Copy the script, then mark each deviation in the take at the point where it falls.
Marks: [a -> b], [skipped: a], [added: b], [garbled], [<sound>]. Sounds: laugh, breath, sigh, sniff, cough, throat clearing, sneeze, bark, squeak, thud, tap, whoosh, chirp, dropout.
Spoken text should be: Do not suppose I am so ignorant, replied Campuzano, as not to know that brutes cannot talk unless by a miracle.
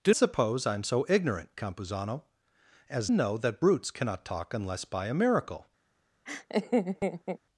Do [skipped: not] suppose I am so ignorant, [skipped: replied] Campuzano, as [skipped: not to] know that brutes cannot talk unless by a miracle. [laugh]